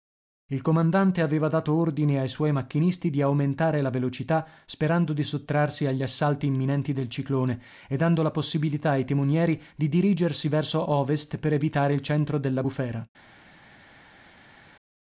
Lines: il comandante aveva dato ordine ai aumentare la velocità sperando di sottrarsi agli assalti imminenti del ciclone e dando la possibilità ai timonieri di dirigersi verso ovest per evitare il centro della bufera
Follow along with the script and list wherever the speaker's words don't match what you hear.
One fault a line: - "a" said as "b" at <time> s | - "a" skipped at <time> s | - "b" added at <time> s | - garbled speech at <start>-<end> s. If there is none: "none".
- "suoi macchinisti di" added at 2.3 s